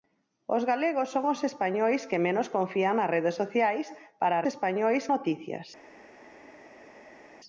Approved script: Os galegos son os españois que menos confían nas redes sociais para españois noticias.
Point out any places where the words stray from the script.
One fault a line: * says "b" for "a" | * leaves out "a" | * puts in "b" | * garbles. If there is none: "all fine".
all fine